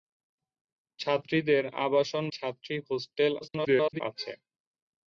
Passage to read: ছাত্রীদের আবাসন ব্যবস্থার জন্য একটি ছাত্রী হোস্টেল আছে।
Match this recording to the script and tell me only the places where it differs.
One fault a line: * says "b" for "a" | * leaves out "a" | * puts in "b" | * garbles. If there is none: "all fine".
* leaves out "ব্যবস্থার জন্য একটি"
* garbles